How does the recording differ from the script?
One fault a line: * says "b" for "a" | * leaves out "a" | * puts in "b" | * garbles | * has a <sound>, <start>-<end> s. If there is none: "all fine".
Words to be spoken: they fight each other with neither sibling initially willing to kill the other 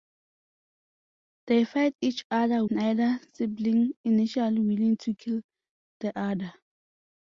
* leaves out "with"